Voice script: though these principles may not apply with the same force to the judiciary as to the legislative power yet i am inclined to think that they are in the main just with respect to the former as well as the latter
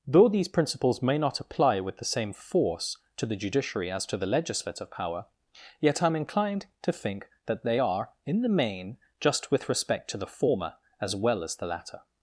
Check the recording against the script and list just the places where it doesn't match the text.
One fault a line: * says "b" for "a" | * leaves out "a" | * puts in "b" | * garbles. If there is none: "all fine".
all fine